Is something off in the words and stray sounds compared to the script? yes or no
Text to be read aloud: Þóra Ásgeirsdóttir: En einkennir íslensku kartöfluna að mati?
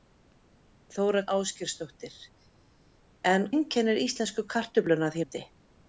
no